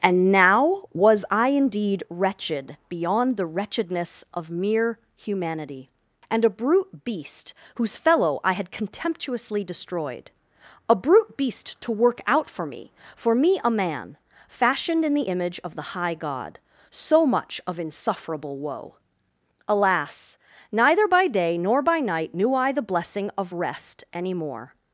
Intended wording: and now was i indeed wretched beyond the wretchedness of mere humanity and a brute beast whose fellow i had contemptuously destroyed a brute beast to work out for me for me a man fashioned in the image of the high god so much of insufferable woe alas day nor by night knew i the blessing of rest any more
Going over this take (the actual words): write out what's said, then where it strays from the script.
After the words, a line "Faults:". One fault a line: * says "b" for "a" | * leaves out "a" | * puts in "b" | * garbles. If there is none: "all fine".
and now was i indeed wretched beyond the wretchedness of mere humanity and a brute beast whose fellow i had contemptuously destroyed a brute beast to work out for me for me a man fashioned in the image of the high god so much of insufferable woe alas neither by day nor by night knew i the blessing of rest any more
Faults:
* puts in "neither by"